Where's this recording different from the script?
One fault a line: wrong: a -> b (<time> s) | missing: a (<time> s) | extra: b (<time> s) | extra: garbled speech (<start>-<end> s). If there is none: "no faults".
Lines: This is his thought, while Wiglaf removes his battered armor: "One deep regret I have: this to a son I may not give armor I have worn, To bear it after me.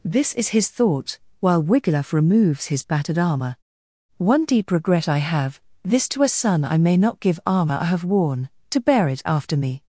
no faults